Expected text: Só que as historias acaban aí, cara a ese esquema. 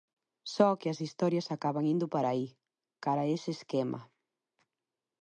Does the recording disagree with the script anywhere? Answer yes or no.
yes